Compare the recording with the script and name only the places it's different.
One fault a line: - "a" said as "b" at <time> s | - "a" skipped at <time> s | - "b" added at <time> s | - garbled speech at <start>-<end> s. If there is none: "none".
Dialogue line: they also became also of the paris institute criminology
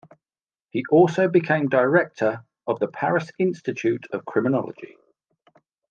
- "they" said as "he" at 0.7 s
- "also" said as "director" at 1.7 s
- "of" added at 4.1 s